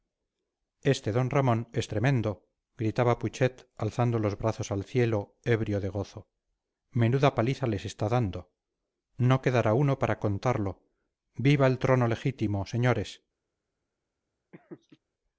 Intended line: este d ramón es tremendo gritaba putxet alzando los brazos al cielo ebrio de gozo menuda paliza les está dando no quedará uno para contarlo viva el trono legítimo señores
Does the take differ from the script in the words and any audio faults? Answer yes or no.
yes